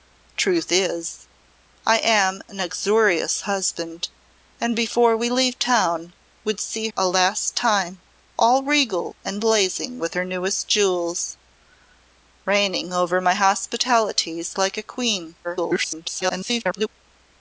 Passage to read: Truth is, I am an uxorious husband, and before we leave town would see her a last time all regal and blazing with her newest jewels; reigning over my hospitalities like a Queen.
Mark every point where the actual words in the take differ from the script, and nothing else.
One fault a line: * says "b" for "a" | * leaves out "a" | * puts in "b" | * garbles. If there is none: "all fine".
* leaves out "her"
* garbles